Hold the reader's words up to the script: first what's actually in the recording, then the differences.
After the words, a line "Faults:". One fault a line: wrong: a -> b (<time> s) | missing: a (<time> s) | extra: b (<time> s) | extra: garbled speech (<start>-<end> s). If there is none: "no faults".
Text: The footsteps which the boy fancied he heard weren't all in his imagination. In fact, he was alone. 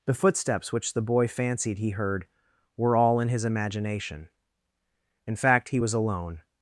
The footsteps which the boy fancied he heard were all in his imagination. In fact, he was alone.
Faults:
wrong: weren't -> were (2.8 s)